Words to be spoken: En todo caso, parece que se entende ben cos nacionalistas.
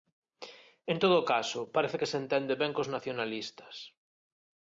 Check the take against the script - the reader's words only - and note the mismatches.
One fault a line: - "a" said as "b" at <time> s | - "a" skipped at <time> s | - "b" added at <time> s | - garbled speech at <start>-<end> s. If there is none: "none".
none